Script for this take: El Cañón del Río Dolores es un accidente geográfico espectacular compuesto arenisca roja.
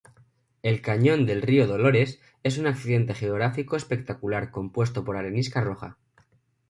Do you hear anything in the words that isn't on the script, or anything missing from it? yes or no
yes